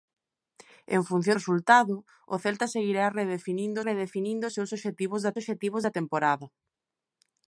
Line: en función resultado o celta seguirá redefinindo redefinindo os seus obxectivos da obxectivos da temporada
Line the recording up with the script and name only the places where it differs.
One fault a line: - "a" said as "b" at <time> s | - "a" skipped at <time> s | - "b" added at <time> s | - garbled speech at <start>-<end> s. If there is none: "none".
none